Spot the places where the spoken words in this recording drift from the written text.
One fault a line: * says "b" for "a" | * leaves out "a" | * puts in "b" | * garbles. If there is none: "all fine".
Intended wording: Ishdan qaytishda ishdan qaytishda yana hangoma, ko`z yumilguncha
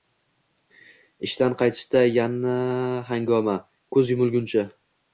* leaves out "ishdan qaytishda"